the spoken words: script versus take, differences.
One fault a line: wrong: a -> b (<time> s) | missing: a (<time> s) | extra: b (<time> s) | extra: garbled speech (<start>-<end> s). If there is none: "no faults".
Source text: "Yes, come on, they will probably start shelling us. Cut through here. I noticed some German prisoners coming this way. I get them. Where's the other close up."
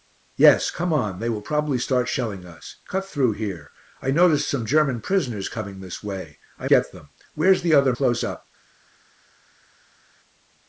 no faults